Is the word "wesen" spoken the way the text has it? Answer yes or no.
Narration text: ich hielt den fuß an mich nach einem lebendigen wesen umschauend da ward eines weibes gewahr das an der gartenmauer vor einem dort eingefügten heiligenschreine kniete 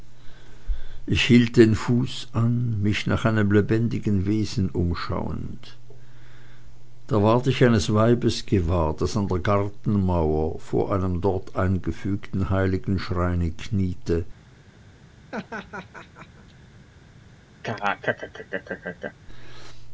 yes